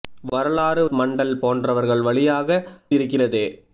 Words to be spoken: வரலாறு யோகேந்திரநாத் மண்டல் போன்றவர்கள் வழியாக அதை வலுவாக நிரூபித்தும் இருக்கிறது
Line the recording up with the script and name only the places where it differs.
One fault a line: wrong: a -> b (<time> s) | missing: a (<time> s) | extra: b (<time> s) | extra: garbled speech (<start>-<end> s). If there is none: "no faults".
missing: யோகேந்திரநாத் (0.8 s)
missing: அதை வலுவாக நிரூபித்தும் (2.6 s)